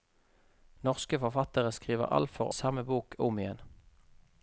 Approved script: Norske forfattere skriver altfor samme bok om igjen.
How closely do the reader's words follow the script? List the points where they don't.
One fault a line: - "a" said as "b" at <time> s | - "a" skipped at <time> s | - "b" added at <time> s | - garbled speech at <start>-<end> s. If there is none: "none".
none